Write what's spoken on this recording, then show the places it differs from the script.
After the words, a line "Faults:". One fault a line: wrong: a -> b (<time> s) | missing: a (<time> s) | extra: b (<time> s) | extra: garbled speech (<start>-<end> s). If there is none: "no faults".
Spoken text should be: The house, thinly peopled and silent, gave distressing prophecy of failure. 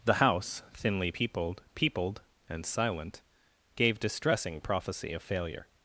The house, thinly peopled peopled and silent, gave distressing prophecy of failure.
Faults:
extra: peopled (1.7 s)